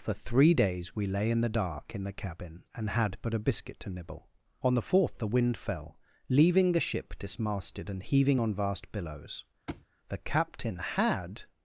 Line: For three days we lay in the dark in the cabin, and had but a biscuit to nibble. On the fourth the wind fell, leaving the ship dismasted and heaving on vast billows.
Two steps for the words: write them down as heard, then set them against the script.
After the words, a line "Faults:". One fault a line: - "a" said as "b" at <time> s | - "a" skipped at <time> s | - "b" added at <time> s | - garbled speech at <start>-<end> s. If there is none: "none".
For three days we lay in the dark in the cabin, and had but a biscuit to nibble. On the fourth the wind fell, leaving the ship dismasted and heaving on vast billows. The captain had
Faults:
- "The captain had" added at 10.1 s